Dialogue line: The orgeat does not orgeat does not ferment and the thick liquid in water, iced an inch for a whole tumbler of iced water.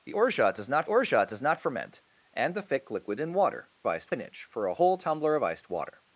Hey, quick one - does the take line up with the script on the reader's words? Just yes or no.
yes